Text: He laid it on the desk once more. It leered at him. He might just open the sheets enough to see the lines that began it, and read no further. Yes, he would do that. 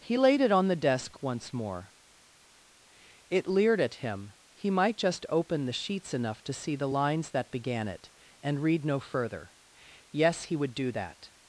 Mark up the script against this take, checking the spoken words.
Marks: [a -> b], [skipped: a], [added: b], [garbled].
He laid it on the desk once more. It leered at him. He might just open the sheets enough to see the lines that began it, and read no further. Yes, he would do that.